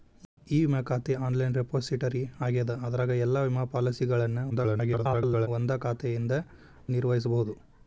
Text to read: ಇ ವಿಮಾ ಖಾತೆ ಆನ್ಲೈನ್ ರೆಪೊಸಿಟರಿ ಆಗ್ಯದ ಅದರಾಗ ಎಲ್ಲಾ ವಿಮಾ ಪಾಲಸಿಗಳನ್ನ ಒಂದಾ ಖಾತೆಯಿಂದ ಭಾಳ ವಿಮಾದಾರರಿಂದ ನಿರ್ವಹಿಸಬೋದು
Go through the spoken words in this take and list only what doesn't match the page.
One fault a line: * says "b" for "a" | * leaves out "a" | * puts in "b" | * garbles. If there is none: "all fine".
* garbles
* leaves out "ಭಾಳ ವಿಮಾದಾರರಿಂದ"